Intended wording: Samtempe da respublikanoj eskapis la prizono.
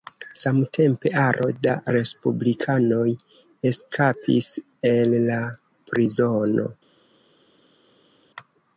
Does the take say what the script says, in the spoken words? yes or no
no